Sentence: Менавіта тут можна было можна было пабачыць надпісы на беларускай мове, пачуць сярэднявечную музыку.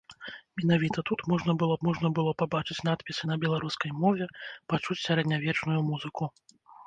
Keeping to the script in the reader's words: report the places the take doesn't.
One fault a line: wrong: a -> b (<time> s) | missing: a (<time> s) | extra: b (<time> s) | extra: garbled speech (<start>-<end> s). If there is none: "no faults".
no faults